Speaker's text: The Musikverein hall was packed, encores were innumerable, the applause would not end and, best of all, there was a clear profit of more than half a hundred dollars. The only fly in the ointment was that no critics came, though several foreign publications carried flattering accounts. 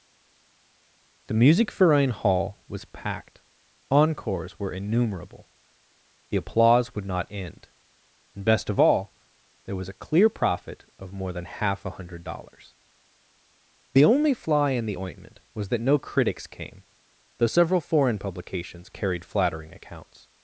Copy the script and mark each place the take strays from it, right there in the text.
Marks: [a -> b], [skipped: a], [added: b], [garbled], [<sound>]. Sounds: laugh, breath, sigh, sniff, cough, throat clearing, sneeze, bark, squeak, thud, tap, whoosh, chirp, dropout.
The Musikverein hall was packed, encores were innumerable, the applause would not end and, best of all, there was a clear profit of more than half a hundred dollars. The only fly in the ointment was that no critics came, though several foreign publications carried flattering accounts.